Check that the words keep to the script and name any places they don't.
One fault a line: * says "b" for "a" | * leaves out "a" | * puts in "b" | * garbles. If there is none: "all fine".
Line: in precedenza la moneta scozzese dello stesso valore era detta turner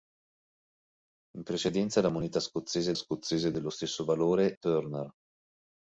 * puts in "scozzese"
* leaves out "era detta"